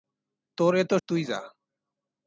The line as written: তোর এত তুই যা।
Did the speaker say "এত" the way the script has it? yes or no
yes